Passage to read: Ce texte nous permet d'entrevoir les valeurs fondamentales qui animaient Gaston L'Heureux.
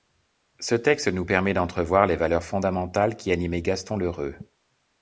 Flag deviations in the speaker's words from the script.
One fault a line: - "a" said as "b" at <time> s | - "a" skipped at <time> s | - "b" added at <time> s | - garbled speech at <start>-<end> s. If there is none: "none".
none